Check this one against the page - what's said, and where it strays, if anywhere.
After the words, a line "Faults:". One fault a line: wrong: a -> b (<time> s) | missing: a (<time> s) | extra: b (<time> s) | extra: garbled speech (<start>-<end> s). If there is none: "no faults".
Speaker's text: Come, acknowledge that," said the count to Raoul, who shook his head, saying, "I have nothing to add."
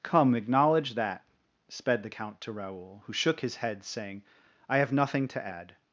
Come, acknowledge that," sped the count to Raoul, who shook his head, saying, "I have nothing to add."
Faults:
wrong: said -> sped (1.7 s)